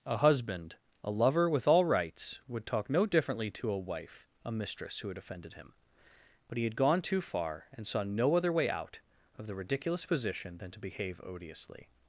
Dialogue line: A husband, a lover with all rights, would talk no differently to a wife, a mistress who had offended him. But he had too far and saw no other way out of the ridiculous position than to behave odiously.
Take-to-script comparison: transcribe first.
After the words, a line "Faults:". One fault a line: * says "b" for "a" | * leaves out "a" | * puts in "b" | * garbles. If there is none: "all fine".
A husband, a lover with all rights, would talk no differently to a wife, a mistress who had offended him. But he had gone too far and saw no other way out of the ridiculous position than to behave odiously.
Faults:
* puts in "gone"